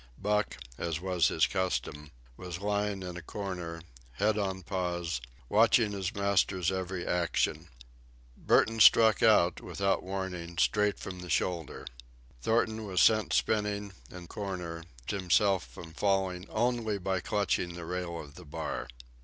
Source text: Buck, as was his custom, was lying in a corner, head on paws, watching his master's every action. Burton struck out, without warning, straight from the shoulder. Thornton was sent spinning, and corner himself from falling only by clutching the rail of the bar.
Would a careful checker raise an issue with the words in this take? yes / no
no